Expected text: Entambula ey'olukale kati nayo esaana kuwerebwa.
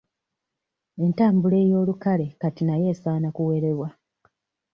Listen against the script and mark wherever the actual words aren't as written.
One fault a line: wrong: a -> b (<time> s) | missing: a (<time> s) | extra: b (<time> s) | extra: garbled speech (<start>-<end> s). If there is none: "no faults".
no faults